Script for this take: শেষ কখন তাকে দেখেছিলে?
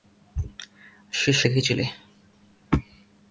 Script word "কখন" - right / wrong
wrong